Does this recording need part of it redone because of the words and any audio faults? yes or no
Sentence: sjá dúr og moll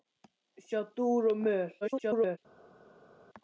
yes